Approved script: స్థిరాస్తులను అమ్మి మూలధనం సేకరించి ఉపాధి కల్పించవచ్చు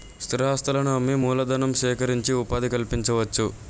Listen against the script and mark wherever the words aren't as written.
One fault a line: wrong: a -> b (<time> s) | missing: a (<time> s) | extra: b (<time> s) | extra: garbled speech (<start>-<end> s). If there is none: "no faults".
no faults